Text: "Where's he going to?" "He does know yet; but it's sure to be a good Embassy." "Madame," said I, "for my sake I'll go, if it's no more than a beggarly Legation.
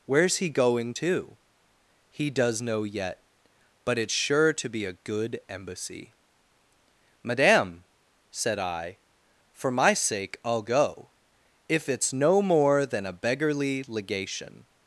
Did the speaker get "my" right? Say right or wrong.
right